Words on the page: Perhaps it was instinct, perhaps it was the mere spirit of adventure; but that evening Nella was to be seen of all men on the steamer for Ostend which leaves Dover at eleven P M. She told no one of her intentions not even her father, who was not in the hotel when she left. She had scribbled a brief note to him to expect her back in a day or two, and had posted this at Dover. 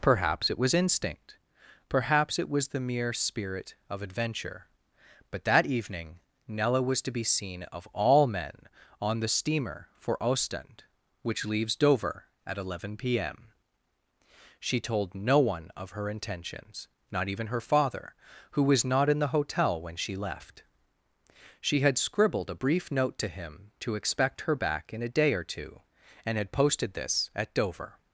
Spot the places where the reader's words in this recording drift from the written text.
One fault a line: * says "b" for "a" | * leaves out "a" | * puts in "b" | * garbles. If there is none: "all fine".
all fine